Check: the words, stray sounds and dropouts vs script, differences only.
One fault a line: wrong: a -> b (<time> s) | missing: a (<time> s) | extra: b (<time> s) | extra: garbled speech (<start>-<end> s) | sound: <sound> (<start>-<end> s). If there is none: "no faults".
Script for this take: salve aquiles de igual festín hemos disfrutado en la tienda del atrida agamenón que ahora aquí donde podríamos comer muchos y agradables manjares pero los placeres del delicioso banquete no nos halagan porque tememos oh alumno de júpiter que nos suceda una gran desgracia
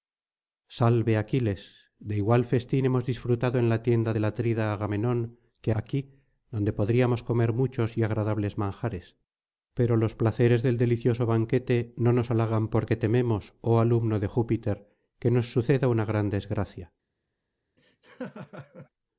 missing: ahora (5.7 s)
sound: laugh (17.8-18.9 s)